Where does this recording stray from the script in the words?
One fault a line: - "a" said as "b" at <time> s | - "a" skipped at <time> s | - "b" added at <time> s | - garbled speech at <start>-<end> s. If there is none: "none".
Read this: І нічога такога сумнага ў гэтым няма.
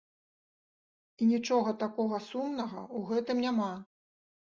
none